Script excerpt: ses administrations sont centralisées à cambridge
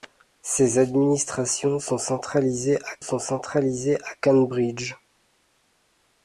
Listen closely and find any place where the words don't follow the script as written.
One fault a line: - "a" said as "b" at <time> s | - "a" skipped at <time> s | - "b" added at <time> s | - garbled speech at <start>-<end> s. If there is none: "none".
- "sont centralisées à" added at 3.0 s